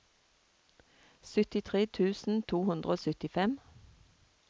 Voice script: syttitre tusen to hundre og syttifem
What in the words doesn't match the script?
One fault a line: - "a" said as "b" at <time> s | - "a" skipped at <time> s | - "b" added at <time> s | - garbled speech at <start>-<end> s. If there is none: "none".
none